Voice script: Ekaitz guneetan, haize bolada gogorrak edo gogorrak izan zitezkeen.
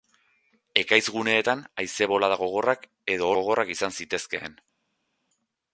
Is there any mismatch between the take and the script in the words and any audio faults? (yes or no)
no